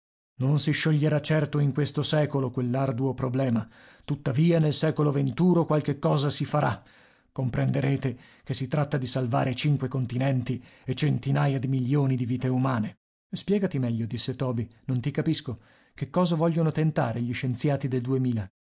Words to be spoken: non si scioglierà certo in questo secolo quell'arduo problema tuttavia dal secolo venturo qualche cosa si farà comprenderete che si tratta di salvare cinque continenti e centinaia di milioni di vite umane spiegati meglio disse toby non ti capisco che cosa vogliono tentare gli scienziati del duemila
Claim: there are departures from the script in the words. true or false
true